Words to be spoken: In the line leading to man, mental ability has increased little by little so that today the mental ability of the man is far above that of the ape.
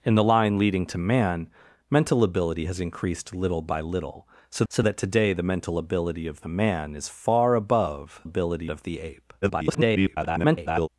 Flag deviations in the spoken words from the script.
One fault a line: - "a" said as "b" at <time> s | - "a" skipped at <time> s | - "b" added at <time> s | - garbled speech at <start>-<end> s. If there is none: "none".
- "so" added at 4.7 s
- "that" said as "ability" at 8.2 s
- garbled speech at 9.4-10.9 s